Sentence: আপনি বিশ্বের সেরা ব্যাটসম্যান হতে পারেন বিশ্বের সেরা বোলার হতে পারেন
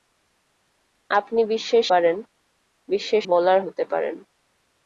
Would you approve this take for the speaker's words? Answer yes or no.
no